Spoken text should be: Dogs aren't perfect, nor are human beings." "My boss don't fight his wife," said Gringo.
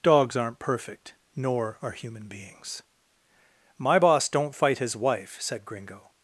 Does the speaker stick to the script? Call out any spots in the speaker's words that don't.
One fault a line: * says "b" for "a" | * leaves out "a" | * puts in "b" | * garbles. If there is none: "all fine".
all fine